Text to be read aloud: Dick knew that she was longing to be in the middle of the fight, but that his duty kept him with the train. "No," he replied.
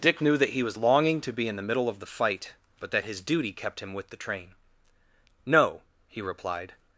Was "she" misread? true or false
true